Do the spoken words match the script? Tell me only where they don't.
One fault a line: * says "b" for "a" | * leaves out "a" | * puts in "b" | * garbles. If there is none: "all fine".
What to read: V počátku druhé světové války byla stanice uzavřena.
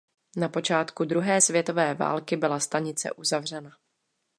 * says "Na" for "V"